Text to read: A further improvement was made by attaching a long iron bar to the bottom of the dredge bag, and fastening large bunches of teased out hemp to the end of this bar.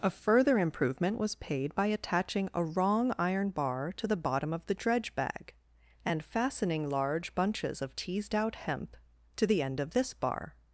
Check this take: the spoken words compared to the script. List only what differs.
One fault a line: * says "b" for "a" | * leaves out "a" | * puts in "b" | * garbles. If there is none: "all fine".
* says "paid" for "made"
* says "wrong" for "long"